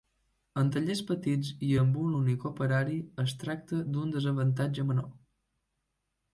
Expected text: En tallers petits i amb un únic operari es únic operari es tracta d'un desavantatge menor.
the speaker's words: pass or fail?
fail